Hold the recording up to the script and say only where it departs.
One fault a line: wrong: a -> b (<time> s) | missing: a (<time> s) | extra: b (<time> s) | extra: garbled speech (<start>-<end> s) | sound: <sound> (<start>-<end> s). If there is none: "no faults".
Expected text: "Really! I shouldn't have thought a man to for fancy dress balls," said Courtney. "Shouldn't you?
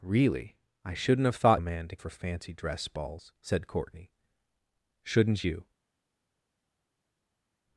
no faults